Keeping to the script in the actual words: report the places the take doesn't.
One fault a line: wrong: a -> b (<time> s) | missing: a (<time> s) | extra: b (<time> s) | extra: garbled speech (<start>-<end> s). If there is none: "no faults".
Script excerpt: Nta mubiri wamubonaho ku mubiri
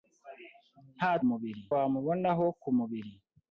no faults